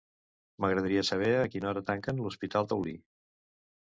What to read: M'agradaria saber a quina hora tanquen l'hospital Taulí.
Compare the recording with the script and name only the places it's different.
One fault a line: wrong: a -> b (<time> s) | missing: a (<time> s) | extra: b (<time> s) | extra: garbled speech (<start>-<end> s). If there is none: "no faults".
no faults